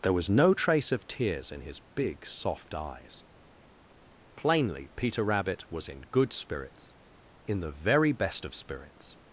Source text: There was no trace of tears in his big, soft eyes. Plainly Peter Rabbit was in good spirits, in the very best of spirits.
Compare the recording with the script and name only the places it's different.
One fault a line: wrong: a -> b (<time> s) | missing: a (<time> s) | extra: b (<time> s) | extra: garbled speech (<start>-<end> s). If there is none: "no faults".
no faults